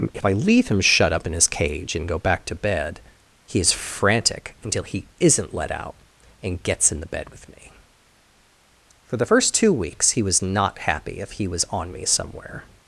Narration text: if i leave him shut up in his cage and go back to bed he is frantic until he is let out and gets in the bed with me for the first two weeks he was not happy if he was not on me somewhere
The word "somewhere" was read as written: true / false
true